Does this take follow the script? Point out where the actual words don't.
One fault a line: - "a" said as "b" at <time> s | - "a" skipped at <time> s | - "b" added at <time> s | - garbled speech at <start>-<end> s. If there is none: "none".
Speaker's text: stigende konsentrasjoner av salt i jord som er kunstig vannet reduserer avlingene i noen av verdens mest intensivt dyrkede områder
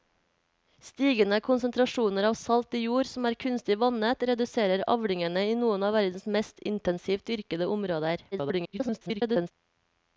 - garbled speech at 8.3-9.5 s